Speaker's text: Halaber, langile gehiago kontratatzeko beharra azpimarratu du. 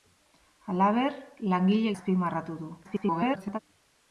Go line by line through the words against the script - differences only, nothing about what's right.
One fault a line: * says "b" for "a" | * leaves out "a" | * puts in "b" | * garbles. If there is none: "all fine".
* leaves out "gehiago kontratatzeko beharra"
* garbles